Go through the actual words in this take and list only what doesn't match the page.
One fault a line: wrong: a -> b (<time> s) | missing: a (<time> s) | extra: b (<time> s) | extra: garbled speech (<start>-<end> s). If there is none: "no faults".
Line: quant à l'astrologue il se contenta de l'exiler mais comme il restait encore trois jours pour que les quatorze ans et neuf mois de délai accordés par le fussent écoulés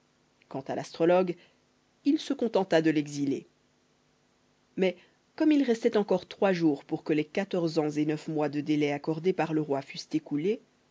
extra: roi (9.6 s)